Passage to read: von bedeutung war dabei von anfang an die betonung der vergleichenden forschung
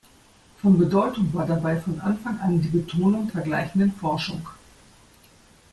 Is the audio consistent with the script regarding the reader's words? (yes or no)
no